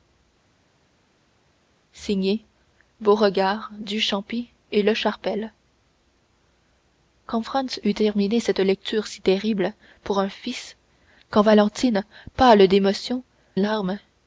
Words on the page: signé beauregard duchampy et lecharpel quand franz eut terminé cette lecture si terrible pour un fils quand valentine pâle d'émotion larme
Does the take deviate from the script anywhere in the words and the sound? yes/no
no